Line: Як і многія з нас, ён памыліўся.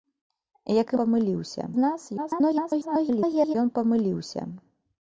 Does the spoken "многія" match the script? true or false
false